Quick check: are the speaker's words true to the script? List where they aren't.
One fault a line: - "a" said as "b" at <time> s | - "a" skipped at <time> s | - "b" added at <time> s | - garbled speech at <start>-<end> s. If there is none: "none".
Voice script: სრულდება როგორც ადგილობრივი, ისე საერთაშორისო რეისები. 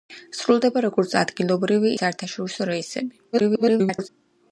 - "ისე" skipped at 1.9 s
- garbled speech at 3.3-4.1 s